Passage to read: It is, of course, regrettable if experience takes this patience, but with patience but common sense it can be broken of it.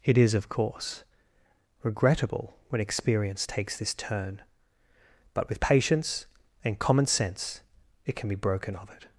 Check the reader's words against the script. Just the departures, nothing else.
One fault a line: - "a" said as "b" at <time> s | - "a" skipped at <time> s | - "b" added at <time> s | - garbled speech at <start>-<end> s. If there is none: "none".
- "if" said as "when" at 2.7 s
- "patience" said as "turn" at 3.9 s
- "but" said as "and" at 6.6 s